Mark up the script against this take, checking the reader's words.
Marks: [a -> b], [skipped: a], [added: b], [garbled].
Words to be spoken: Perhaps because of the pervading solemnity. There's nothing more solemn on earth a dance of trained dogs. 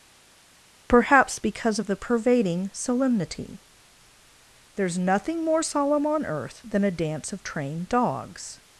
Perhaps because of the pervading solemnity. There's nothing more solemn on earth [added: than] a dance of trained dogs.